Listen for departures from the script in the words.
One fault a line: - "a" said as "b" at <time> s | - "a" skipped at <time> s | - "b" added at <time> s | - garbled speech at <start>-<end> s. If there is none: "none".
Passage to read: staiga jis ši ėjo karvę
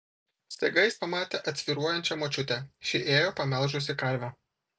- "pamatė atsvyruojančią močiutę" added at 1.0 s
- "pamelžusi" added at 3.4 s